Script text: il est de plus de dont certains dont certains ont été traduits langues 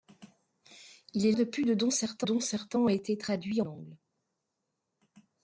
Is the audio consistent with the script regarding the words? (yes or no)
yes